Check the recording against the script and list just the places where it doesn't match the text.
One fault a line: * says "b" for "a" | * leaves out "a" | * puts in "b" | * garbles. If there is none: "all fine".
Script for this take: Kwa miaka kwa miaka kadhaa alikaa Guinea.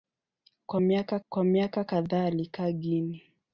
all fine